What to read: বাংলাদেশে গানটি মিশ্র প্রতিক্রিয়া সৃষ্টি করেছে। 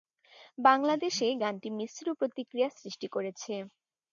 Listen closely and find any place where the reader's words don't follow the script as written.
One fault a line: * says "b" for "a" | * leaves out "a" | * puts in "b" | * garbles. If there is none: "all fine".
all fine